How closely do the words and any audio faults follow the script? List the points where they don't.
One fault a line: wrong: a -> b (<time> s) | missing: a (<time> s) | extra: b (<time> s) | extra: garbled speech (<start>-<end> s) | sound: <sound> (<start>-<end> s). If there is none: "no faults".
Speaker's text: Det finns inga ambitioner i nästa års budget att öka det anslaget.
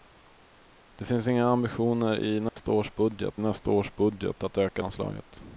sound: dropout (2.5-2.6 s)
extra: nästa års budget (3.4 s)
missing: det (4.8 s)